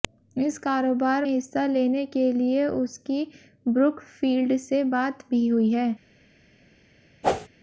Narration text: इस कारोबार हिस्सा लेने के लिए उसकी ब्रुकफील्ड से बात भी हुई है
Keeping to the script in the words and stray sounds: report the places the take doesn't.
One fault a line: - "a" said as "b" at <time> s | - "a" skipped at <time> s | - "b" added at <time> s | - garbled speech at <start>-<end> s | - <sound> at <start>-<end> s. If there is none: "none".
- whoosh at 7.2-7.5 s